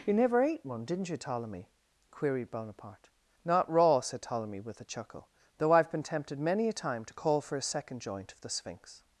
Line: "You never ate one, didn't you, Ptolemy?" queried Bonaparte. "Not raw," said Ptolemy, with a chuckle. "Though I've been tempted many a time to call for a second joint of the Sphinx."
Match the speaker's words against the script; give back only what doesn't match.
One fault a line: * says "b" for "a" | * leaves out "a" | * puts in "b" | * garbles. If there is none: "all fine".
all fine